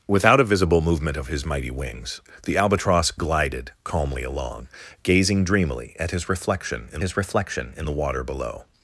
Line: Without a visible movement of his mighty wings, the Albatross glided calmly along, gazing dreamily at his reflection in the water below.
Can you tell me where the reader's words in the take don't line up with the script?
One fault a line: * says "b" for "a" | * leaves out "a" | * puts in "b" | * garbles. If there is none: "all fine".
* puts in "his reflection in"